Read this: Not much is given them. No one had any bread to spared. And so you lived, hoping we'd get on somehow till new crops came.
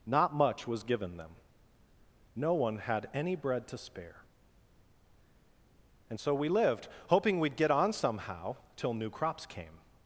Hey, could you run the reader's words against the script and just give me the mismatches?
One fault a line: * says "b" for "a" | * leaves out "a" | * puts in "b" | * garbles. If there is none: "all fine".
* says "was" for "is"
* says "spare" for "spared"
* says "we" for "you"